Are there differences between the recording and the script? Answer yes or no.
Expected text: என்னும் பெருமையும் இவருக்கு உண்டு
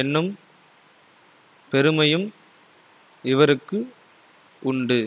no